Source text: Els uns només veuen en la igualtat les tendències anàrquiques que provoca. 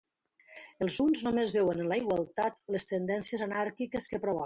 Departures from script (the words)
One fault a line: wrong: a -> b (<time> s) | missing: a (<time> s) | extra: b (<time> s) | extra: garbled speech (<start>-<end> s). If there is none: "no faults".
no faults